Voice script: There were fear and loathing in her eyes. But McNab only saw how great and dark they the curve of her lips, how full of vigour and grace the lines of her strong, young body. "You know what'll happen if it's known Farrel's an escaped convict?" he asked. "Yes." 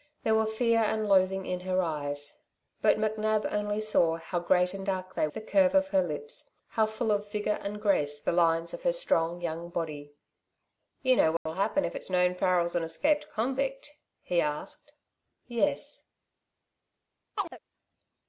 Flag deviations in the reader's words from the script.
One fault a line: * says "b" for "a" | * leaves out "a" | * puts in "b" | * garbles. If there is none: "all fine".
all fine